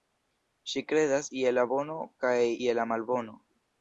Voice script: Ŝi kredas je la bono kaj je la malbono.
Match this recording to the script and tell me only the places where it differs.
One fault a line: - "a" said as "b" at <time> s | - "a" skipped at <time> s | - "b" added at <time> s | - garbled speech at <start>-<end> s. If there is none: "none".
none